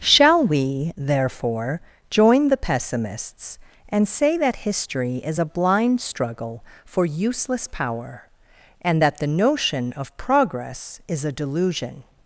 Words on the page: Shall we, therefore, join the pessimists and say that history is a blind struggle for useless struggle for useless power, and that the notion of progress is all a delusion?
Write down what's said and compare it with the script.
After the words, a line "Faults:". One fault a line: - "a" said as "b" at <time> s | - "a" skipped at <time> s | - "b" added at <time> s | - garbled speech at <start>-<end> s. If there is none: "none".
Shall we, therefore, join the pessimists and say that history is a blind struggle for useless power, and that the notion of progress is a delusion?
Faults:
- "struggle for useless" skipped at 7.7 s
- "all" skipped at 11.2 s